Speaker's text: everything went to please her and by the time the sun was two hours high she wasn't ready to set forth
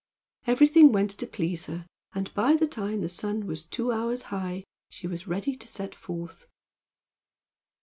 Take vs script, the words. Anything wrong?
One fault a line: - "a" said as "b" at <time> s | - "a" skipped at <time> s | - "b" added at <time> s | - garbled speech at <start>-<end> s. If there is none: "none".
- "wasn't" said as "was" at 5.1 s